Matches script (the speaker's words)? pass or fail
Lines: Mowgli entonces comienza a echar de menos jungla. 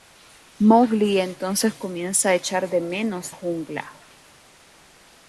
pass